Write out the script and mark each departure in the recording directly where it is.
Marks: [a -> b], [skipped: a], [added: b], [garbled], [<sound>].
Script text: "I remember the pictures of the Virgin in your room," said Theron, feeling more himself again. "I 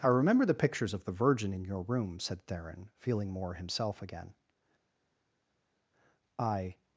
"I remember the pictures of the Virgin in your room," said Theron, feeling more himself again. "I